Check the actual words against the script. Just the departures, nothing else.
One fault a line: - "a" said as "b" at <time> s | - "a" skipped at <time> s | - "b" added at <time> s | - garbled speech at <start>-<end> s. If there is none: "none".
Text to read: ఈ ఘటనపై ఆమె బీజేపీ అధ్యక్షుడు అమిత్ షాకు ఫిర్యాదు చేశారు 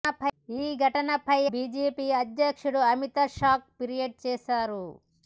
- "ఆమె" skipped at 1.4 s